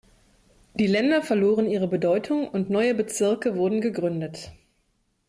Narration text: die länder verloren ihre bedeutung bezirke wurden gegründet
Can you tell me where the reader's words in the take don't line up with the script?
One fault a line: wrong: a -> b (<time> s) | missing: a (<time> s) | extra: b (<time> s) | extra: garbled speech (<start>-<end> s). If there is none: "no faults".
extra: und neue (2.5 s)